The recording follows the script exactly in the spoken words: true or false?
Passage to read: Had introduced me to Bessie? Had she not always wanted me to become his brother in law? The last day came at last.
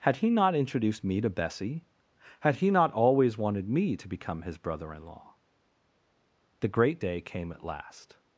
false